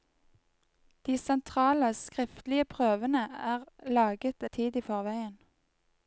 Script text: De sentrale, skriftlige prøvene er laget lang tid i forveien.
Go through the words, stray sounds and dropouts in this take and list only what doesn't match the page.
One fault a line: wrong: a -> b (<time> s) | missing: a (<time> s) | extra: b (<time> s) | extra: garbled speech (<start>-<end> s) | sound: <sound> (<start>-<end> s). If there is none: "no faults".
missing: lang (4.5 s)